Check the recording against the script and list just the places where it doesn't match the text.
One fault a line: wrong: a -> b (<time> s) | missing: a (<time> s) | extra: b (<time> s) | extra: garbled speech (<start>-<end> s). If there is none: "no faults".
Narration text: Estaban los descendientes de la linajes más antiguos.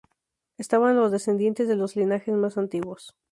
wrong: la -> los (1.7 s)